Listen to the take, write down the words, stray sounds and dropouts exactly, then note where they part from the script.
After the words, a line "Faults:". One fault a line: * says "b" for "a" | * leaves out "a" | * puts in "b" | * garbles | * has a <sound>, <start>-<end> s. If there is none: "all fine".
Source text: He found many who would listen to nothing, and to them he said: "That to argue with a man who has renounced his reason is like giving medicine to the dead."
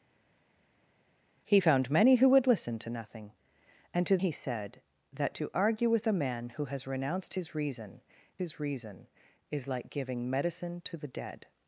He found many who would listen to nothing, and to he said: "That to argue with a man who has renounced his reason his reason is like giving medicine to the dead."
Faults:
* leaves out "them"
* puts in "his reason"